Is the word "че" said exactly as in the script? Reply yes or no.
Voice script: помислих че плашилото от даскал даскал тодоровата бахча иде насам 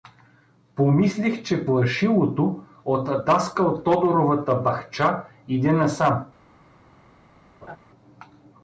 yes